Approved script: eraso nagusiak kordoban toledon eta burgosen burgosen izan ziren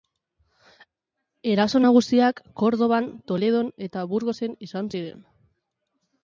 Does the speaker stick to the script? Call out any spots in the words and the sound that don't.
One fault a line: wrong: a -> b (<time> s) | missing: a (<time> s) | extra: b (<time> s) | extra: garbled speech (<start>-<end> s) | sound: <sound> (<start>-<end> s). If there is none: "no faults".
missing: burgosen (4.6 s)